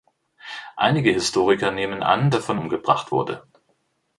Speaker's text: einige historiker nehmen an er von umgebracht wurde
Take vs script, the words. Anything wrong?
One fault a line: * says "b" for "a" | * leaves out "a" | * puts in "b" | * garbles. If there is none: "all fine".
all fine